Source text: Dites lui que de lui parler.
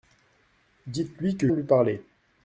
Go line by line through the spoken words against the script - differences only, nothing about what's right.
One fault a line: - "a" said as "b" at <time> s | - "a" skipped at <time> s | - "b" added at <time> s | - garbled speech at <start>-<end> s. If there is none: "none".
none